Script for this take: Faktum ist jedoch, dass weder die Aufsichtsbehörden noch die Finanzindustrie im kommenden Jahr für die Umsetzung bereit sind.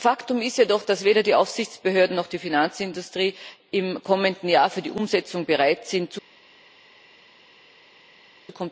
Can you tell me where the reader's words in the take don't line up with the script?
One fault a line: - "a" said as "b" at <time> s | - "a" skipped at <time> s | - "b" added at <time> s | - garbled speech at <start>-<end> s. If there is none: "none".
none